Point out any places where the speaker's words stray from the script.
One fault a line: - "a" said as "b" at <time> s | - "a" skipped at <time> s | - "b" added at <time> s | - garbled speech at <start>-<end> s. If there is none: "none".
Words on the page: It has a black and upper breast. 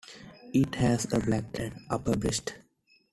none